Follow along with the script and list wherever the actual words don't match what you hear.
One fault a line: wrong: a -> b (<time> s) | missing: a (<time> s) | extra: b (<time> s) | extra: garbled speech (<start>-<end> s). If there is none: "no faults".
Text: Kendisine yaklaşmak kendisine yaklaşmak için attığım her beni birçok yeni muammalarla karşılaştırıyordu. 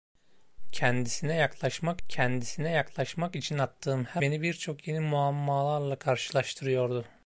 no faults